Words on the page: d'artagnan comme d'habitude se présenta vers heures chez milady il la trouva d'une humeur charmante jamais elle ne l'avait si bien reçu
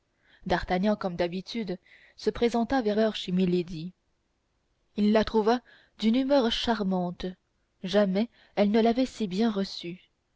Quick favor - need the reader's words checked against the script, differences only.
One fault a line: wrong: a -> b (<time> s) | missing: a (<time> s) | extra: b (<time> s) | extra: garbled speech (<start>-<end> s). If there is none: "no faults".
no faults